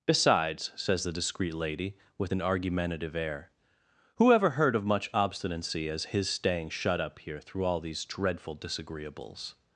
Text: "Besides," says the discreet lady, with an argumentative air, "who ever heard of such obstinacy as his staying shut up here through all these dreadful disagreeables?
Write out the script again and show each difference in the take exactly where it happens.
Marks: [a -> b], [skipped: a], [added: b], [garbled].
"Besides," says the discreet lady, with an argumentative air, "who ever heard of [such -> much] obstinacy as his staying shut up here through all these dreadful disagreeables?